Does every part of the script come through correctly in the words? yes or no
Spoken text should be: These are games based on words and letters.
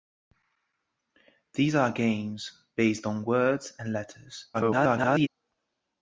no